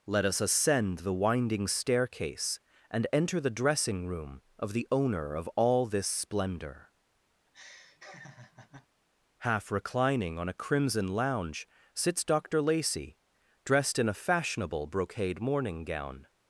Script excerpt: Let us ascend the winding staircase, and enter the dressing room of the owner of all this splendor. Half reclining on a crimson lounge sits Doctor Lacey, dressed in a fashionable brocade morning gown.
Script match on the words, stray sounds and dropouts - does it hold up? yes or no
no